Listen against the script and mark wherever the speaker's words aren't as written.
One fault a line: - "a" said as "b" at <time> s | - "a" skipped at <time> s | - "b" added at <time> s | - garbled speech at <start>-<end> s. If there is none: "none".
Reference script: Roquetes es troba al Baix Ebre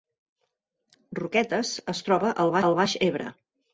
- "al" added at 2.7 s